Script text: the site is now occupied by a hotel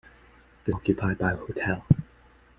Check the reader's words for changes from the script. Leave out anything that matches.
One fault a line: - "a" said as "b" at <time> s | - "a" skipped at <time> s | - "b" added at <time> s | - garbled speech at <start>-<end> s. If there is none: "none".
- "site is now" skipped at 0.7 s